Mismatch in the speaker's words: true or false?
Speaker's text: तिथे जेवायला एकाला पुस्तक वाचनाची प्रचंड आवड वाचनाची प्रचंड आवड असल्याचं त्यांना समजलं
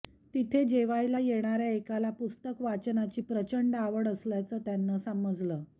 true